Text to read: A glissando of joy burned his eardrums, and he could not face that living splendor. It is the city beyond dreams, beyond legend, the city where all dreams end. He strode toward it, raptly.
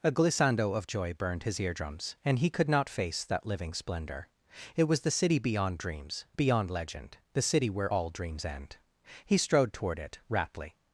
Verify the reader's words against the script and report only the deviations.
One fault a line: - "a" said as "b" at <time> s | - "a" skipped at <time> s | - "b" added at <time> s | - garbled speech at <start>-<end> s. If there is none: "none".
- "is" said as "was" at 4.8 s